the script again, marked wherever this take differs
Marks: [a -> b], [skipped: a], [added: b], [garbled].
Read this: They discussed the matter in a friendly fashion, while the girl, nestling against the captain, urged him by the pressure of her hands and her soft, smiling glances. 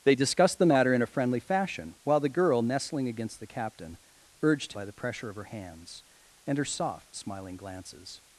They discussed the matter in a friendly fashion, while the girl, nestling against the captain, urged [skipped: him] by the pressure of her hands and her soft, smiling glances.